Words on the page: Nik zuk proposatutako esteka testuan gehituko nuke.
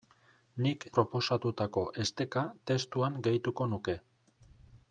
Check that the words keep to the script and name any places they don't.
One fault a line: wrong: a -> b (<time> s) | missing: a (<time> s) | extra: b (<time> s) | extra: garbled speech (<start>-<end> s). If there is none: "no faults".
missing: zuk (0.8 s)